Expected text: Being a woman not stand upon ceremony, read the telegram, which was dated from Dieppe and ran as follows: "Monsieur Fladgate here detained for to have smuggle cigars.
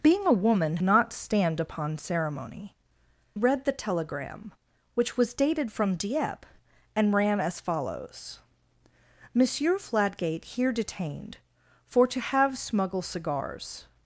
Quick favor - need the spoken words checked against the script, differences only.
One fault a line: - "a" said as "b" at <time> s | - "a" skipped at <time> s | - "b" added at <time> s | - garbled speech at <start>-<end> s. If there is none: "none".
none